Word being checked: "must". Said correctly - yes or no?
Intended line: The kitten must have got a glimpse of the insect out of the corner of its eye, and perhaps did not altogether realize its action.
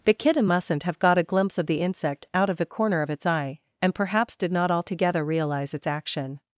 no